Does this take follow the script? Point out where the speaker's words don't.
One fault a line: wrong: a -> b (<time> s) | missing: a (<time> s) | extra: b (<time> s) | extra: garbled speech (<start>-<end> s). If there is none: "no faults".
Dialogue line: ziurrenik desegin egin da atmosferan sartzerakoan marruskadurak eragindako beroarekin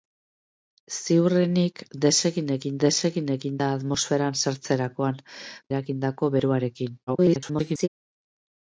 extra: desegin egin (2.9 s)
missing: marruskadurak (5.2 s)
extra: garbled speech (7.1-7.9 s)